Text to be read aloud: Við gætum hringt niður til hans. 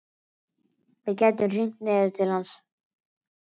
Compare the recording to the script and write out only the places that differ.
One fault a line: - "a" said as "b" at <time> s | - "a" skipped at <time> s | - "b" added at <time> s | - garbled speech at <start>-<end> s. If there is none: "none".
none